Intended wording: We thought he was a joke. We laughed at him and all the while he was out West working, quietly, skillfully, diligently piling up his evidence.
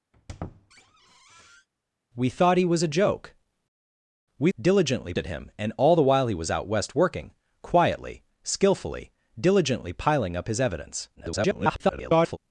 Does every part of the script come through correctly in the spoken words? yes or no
no